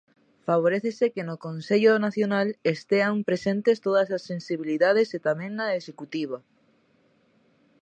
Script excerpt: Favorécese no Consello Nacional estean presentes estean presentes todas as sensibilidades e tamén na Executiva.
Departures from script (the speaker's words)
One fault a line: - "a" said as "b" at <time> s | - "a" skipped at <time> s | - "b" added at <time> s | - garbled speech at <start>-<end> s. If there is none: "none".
- "que" added at 1.1 s
- "estean presentes" skipped at 3.8 s